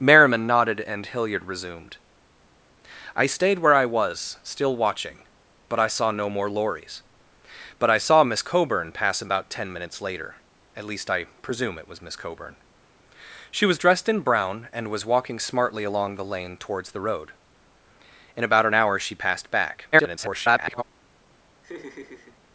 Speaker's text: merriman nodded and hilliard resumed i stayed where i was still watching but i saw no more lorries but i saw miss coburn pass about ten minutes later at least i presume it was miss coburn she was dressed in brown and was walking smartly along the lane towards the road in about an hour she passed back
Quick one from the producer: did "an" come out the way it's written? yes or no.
yes